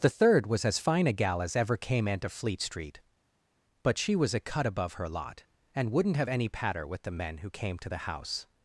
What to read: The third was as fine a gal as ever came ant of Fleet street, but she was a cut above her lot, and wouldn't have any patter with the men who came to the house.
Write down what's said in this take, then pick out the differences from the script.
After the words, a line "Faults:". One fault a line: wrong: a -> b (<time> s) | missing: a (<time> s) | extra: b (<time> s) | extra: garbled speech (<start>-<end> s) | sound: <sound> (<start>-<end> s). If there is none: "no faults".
The third was as fine a gal as ever came into Fleet street, but she was a cut above her lot, and wouldn't have any patter with the men who came to the house.
Faults:
wrong: ant of -> into (2.1 s)